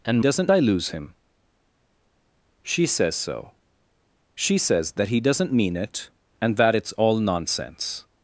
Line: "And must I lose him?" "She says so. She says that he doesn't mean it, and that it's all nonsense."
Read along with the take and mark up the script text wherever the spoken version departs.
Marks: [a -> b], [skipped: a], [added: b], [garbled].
"And [must -> doesn't] I lose him?" "She says so. She says that he doesn't mean it, and that it's all nonsense."